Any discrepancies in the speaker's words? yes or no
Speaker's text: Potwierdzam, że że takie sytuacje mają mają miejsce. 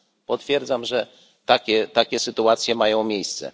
yes